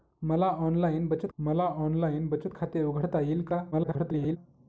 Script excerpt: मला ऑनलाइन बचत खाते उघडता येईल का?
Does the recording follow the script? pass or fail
fail